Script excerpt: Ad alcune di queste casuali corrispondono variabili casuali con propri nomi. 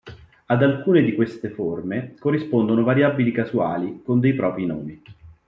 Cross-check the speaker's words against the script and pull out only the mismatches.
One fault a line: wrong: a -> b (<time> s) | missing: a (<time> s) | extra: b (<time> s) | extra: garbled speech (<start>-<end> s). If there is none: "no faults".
wrong: casuali -> forme (1.5 s)
extra: dei (4.2 s)